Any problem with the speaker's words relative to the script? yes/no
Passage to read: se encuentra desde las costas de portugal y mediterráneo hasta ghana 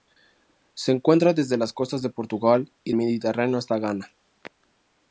no